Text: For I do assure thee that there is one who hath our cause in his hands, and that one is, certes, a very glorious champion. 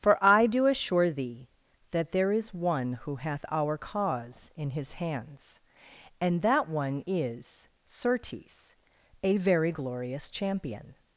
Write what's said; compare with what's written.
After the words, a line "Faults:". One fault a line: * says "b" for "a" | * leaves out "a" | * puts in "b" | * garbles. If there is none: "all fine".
For I do assure thee that there is one who hath our cause in his hands, and that one is, certes, a very glorious champion.
Faults:
all fine